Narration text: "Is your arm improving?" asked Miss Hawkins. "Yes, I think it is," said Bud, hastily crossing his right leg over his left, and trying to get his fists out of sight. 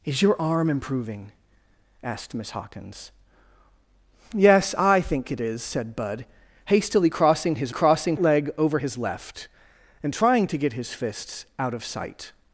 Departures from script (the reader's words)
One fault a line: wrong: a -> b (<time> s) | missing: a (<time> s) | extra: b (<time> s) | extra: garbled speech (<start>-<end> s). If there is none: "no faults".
wrong: right -> crossing (7.7 s)